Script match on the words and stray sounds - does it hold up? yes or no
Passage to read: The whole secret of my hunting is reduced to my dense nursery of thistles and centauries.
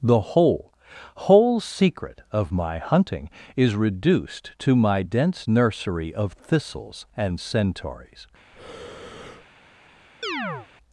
no